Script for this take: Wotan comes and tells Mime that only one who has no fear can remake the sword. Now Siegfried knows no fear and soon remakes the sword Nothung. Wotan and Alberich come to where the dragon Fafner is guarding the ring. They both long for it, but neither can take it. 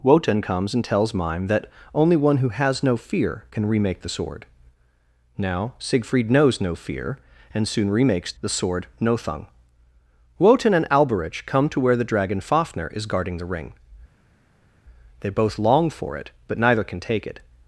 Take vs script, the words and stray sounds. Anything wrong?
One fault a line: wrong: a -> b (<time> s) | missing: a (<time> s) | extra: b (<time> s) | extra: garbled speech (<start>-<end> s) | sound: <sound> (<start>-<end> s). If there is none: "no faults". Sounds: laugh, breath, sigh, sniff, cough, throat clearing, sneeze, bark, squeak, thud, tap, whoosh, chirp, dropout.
no faults